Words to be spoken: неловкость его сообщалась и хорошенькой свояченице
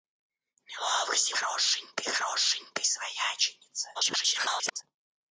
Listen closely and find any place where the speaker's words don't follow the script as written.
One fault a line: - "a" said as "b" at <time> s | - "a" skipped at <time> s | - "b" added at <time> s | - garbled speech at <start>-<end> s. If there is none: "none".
- "сообщалась" said as "хорошенькой" at 1.3 s
- garbled speech at 3.9-4.8 s